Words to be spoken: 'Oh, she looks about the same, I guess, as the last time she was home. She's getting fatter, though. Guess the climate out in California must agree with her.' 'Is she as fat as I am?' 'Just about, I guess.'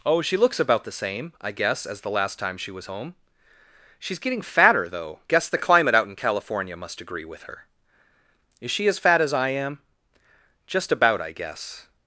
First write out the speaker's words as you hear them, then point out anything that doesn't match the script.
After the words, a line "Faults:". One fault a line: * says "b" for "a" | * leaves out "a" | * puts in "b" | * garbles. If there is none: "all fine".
'Oh, she looks about the same, I guess, as the last time she was home. She's getting fatter, though. Guess the climate out in California must agree with her.' 'Is she as fat as I am?' 'Just about, I guess.'
Faults:
all fine